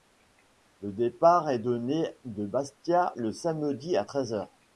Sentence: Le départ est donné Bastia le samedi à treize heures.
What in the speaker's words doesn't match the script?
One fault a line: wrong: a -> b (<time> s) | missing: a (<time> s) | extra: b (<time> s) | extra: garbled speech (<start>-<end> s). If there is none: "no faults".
extra: de (2.2 s)